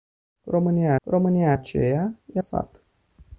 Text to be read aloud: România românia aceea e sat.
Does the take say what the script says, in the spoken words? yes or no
yes